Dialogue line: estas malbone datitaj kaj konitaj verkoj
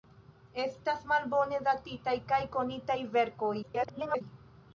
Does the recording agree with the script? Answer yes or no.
no